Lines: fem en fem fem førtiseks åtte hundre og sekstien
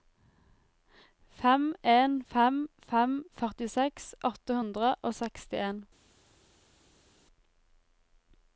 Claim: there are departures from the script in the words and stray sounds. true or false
false